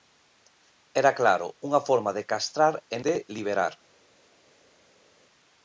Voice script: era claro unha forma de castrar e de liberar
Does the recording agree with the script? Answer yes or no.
yes